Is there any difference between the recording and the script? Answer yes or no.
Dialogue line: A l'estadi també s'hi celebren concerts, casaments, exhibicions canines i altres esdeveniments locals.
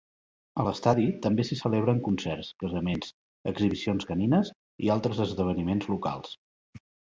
no